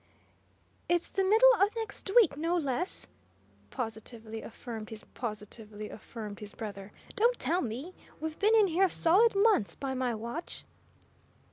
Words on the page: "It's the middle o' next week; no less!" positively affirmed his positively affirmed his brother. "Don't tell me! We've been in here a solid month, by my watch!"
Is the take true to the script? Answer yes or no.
yes